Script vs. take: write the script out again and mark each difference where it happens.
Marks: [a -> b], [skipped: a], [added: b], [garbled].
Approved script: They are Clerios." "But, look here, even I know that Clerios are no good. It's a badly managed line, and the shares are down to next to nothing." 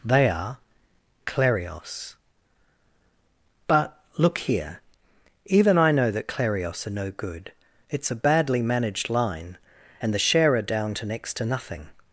They are Clerios." "But, look here, even I know that Clerios are no good. It's a badly managed line, and the [shares -> share] are down to next to nothing."